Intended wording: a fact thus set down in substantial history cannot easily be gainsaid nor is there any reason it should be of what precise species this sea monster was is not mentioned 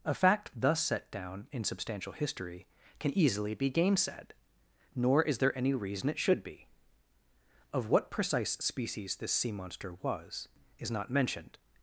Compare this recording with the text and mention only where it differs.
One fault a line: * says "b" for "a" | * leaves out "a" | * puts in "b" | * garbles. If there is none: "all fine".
* says "can" for "cannot"